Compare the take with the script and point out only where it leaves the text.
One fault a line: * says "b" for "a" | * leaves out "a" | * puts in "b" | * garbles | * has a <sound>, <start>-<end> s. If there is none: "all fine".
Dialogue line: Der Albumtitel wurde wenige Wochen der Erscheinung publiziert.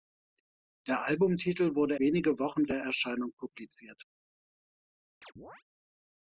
* has a chirp, 5.2-5.6 s